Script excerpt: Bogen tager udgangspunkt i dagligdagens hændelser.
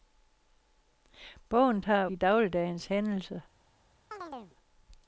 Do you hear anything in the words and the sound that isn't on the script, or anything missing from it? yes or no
yes